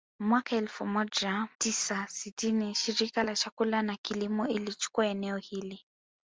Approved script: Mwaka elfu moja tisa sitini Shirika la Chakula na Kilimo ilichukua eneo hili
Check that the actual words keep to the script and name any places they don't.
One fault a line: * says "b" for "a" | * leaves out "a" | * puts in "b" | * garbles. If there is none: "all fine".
all fine